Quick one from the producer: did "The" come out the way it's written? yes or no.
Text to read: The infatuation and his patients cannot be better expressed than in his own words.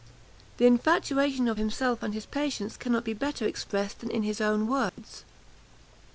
yes